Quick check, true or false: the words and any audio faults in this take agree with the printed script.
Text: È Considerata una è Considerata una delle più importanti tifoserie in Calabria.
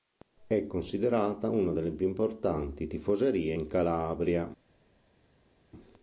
false